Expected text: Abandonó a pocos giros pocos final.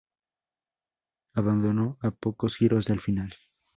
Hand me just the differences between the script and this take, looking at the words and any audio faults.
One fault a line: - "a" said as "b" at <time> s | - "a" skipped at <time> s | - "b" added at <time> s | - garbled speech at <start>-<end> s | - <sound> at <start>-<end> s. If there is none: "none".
- "pocos" said as "del" at 2.9 s